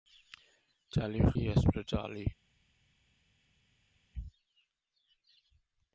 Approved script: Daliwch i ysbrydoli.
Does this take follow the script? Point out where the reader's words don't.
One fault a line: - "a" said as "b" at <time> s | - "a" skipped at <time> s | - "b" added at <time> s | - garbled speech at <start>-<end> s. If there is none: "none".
none